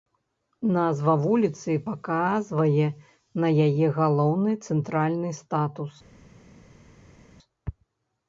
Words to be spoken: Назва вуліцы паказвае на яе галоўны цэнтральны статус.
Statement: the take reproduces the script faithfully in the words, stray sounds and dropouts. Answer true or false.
true